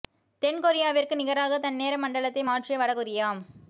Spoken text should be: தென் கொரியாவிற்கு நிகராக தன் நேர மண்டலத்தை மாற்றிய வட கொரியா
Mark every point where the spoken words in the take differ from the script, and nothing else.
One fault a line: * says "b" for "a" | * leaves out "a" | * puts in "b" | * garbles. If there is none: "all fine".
all fine